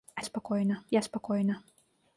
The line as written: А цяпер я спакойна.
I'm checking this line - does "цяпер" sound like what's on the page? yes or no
no